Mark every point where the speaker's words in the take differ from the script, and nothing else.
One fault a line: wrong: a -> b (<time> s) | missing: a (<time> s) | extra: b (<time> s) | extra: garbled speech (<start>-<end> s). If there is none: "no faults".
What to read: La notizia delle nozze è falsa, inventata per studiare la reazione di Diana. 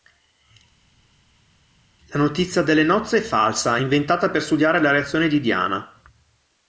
no faults